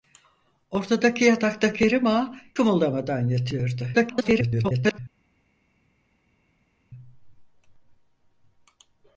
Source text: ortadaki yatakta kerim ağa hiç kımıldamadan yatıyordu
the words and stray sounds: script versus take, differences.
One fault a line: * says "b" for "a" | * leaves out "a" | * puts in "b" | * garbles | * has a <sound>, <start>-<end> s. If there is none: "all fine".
* leaves out "hiç"
* garbles